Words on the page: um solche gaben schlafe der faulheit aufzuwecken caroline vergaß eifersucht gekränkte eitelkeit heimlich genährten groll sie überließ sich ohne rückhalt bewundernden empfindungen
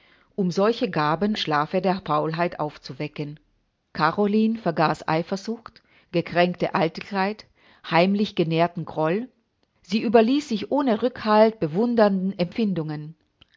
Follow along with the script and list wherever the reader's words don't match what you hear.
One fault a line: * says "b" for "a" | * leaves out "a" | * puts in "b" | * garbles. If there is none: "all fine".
all fine